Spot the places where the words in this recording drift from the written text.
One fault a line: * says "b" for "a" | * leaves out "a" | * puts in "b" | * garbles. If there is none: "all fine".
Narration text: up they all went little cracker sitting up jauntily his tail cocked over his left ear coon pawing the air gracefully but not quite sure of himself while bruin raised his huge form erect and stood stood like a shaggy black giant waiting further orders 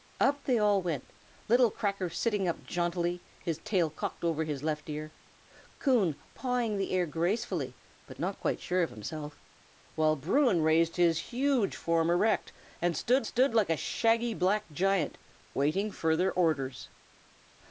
all fine